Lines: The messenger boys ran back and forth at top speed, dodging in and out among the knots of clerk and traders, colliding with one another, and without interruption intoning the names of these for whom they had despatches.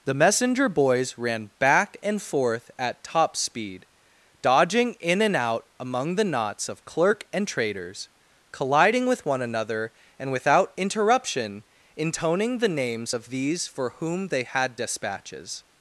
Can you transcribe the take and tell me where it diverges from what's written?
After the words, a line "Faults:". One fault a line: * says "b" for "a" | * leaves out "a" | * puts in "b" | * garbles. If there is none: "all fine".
The messenger boys ran back and forth at top speed, dodging in and out among the knots of clerk and traders, colliding with one another, and without interruption intoning the names of these for whom they had despatches.
Faults:
all fine